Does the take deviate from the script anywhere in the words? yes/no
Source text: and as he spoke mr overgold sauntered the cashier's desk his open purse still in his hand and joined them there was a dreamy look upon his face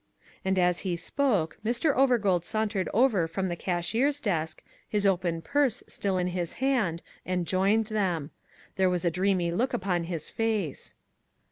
yes